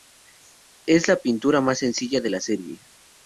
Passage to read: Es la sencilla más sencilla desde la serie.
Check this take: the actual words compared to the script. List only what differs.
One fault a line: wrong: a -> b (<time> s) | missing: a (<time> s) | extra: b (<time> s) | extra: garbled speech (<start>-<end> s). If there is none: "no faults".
wrong: sencilla -> pintura (1.2 s)
wrong: desde -> de (2.2 s)